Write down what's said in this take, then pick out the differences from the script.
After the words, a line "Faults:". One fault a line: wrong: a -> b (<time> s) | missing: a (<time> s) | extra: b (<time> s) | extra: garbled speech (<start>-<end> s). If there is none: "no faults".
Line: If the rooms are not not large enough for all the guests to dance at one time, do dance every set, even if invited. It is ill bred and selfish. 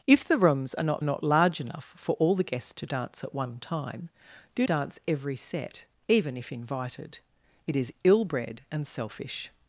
If the rooms are not not large enough for all the guests to dance at one time, do dance every set, even if invited. It is ill bred and selfish.
Faults:
no faults